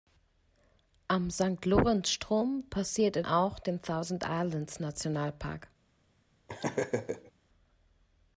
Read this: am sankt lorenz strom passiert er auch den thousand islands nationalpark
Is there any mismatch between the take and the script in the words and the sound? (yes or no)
yes